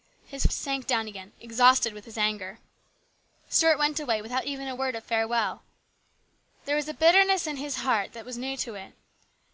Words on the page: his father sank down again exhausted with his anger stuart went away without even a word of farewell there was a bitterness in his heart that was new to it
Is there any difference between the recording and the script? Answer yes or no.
yes